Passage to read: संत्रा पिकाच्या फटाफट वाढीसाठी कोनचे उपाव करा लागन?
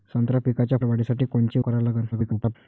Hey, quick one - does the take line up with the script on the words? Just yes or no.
no